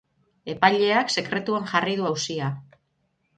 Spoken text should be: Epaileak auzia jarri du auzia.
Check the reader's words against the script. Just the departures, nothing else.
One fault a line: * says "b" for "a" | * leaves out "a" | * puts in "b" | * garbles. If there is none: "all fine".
* says "sekretuan" for "auzia"